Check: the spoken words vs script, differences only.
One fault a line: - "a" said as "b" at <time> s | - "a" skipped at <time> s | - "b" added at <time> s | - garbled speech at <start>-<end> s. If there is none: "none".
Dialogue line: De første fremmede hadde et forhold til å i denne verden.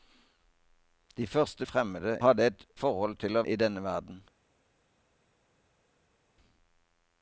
none